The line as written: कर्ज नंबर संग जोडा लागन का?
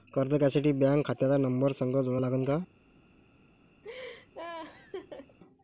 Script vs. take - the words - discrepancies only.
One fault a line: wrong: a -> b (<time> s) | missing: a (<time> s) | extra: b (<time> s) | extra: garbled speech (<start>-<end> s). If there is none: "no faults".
extra: घ्यासाठी बँक खात्याचा (0.3 s)